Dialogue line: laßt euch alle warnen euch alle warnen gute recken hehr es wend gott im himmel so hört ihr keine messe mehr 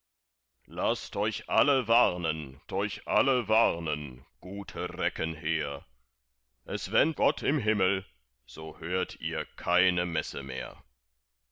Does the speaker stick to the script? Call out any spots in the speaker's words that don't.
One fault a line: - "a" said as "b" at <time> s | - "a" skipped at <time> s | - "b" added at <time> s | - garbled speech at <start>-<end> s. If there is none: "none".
none